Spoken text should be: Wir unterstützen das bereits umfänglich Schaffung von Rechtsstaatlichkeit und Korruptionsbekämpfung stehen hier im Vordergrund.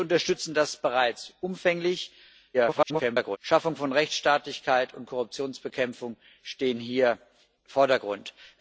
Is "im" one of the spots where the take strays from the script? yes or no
yes